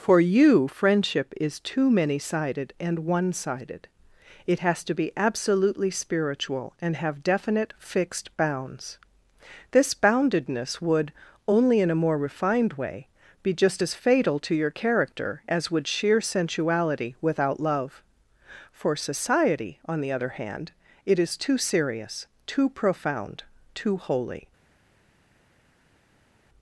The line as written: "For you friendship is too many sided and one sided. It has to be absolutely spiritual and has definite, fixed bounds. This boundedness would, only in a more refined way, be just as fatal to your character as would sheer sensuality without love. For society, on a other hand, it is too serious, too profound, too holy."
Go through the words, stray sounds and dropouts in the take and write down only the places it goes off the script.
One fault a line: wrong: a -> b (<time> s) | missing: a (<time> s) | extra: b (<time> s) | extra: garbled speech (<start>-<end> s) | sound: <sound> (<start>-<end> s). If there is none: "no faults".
wrong: has -> have (6.9 s)
wrong: a -> the (20.0 s)